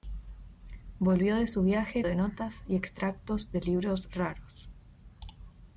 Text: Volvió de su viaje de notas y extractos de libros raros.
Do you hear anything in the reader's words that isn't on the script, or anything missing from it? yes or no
no